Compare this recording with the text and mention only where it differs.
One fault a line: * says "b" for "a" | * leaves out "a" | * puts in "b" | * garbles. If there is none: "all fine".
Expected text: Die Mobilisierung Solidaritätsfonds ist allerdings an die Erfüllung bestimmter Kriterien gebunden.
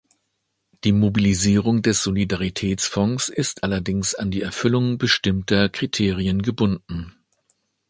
* puts in "des"